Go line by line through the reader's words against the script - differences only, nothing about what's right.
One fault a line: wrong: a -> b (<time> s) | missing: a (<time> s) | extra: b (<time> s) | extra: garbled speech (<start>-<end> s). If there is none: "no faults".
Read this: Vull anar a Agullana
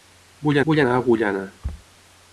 extra: vull (0.7 s)